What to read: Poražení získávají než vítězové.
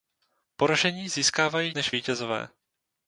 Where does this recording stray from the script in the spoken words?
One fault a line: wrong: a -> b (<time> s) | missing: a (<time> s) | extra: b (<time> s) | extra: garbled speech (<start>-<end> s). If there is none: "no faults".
no faults